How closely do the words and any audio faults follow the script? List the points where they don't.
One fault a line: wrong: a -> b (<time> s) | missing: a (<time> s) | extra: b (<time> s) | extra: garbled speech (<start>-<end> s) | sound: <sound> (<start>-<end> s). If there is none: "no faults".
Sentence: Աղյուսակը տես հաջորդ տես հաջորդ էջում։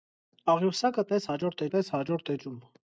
no faults